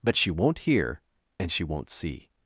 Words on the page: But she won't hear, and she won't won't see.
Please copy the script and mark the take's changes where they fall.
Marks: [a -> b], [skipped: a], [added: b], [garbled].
But she won't hear, and she won't [skipped: won't] see.